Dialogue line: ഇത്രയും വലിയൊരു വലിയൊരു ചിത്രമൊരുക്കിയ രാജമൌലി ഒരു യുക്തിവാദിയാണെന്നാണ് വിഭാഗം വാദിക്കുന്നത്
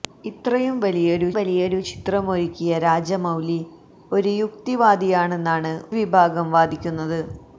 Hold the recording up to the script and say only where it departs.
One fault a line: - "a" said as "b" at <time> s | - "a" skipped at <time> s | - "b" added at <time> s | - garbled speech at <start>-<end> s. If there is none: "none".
none